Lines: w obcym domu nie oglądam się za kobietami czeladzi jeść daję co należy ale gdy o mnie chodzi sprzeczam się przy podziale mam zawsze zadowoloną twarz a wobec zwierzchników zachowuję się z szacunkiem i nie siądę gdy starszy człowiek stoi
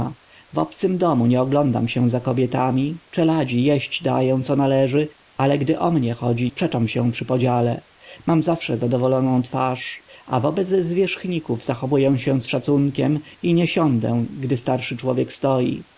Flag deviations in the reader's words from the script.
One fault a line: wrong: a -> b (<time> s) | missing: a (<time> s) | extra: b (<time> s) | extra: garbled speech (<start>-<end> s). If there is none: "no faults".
no faults